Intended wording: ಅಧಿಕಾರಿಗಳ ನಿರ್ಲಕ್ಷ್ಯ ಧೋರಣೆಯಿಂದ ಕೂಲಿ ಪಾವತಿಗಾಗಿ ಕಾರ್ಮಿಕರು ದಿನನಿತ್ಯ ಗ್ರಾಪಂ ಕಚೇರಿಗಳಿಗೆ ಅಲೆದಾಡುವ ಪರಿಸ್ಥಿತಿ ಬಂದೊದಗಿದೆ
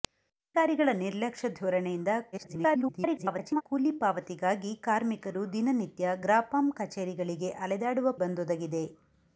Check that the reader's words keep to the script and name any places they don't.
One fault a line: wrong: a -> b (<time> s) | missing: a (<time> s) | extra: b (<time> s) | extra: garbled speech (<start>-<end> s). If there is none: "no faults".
extra: garbled speech (2.3-3.6 s)
missing: ಪರಿಸ್ಥಿತಿ (8.1 s)